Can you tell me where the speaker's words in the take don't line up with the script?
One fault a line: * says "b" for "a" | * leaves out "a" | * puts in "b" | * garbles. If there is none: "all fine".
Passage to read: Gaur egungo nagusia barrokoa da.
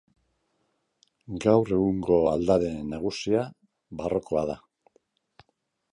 * puts in "aldare"